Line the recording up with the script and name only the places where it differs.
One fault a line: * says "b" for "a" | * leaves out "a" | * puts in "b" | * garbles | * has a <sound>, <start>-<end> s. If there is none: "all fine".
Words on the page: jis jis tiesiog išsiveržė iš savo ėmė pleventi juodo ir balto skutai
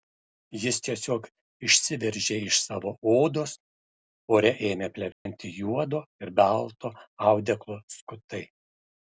* leaves out "jis"
* puts in "odos ore"
* has a dropout, 5.1-5.3 s
* puts in "audeklo"